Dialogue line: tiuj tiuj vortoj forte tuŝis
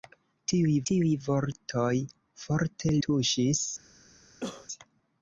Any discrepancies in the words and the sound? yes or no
yes